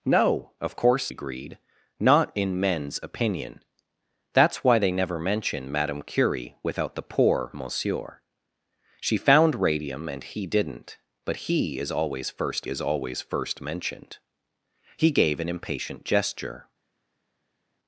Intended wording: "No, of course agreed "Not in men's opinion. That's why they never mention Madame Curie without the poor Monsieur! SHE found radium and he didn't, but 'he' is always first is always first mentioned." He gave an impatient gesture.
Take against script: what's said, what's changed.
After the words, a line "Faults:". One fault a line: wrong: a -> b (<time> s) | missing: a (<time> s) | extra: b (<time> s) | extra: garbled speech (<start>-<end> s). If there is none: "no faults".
"No, of course agreed "Not in men's opinion. That's why they never mention Madame Curie without the poor Monsieur! SHE found radium and he didn't, but 'he' is always first is always first mentioned." He gave an impatient gesture.
Faults:
no faults